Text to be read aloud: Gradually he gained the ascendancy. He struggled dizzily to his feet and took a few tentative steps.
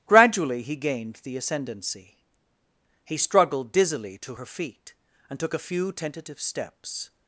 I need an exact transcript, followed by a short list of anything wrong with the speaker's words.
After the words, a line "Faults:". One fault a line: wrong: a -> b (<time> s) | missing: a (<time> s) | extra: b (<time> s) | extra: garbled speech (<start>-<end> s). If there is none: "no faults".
Gradually he gained the ascendancy. He struggled dizzily to her feet and took a few tentative steps.
Faults:
wrong: his -> her (4.3 s)